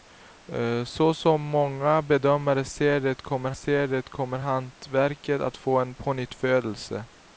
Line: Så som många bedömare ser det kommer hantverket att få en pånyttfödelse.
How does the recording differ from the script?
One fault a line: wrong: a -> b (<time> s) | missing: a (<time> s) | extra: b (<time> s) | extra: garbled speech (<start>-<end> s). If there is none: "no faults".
extra: ser det kommer (3.5 s)